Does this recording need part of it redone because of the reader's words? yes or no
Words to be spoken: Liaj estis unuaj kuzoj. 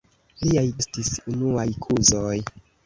no